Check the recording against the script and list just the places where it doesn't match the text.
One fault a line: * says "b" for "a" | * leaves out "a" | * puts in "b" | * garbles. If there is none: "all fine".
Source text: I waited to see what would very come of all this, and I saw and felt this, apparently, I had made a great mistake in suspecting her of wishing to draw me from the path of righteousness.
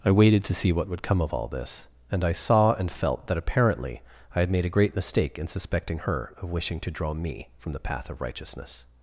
* leaves out "very"
* says "that" for "this"